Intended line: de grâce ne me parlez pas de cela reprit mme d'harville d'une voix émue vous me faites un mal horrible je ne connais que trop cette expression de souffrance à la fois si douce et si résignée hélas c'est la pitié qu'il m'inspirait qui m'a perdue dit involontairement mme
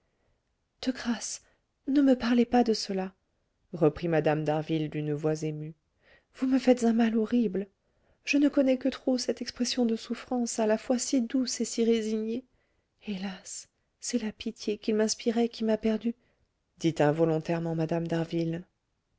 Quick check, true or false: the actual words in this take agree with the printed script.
true